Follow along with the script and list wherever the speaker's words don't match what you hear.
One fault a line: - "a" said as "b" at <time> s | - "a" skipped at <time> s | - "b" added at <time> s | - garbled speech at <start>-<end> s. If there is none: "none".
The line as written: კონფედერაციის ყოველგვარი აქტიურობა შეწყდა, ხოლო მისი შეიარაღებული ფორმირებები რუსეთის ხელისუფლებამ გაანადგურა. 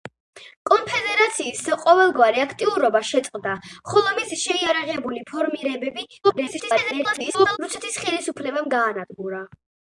- garbled speech at 6.2-7.6 s